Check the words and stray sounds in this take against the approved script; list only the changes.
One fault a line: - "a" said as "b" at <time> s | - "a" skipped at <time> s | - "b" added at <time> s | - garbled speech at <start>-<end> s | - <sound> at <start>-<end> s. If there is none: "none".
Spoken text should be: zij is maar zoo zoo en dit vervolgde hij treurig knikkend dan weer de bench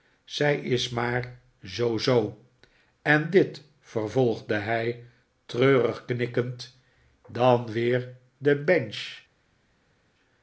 none